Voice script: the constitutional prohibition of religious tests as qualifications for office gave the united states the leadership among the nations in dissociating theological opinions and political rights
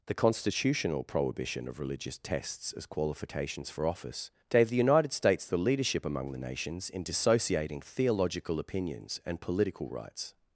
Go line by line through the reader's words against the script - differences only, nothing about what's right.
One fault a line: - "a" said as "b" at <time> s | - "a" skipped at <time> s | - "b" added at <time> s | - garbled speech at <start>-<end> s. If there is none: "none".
none